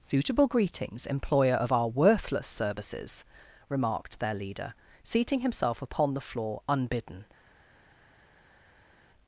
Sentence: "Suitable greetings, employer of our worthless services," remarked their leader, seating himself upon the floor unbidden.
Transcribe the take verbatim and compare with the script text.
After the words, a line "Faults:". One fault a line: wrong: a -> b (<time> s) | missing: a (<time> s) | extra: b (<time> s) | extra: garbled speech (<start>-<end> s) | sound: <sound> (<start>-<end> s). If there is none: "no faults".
"Suitable greetings, employer of our worthless services," remarked their leader, seating himself upon the floor unbidden.
Faults:
no faults